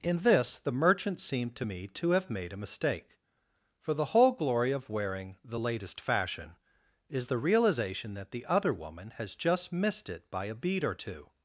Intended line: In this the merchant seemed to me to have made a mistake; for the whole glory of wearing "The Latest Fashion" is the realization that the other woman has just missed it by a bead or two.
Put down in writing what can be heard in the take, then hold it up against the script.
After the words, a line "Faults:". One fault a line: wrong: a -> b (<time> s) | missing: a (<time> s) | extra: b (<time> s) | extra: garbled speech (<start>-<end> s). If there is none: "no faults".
In this the merchant seemed to me to have made a mistake; for the whole glory of wearing "The Latest Fashion" is the realization that the other woman has just missed it by a bead or two.
Faults:
no faults